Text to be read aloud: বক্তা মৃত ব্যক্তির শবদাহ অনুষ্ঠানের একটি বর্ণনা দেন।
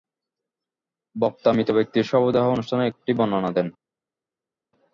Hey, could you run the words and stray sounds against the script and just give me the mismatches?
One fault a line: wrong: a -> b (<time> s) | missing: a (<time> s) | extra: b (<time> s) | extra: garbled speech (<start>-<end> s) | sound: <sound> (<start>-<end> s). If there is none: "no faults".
no faults